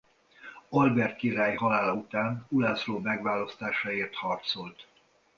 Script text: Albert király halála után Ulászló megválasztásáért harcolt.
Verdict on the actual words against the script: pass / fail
pass